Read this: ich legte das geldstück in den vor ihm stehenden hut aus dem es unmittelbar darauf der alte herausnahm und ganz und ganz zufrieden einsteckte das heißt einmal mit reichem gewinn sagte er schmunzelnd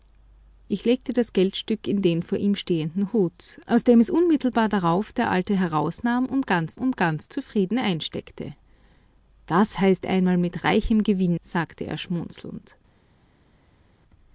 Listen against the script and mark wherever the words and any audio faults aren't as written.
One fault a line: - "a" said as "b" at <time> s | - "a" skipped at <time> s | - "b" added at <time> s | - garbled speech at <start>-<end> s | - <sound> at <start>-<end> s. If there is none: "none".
none